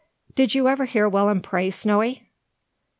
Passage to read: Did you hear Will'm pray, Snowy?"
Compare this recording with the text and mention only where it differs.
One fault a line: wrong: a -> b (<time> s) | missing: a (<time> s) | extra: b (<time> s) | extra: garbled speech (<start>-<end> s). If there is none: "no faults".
extra: ever (0.7 s)